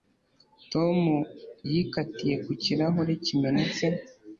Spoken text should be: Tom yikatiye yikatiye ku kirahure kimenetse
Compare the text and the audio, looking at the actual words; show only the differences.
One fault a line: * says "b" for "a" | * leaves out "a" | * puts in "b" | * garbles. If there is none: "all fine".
* leaves out "yikatiye"